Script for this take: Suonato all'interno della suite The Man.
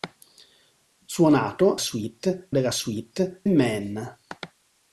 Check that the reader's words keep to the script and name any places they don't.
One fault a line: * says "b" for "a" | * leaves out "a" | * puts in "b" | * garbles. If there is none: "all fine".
* says "suite" for "all'interno"
* leaves out "The"